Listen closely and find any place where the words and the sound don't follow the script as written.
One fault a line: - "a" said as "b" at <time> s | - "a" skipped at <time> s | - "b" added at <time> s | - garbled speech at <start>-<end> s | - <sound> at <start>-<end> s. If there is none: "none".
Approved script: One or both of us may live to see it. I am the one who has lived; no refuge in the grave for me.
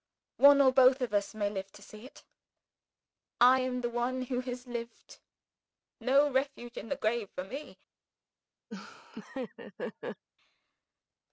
- laugh at 8.7-10.2 s